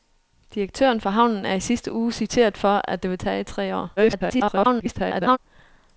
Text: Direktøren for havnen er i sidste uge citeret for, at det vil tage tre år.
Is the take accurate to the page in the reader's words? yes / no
no